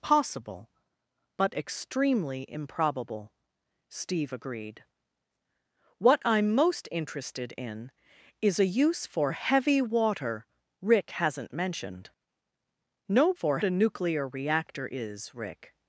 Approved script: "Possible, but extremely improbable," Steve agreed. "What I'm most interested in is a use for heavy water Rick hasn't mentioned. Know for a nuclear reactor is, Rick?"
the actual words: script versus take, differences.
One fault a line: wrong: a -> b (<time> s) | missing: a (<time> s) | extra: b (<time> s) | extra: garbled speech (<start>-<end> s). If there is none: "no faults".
no faults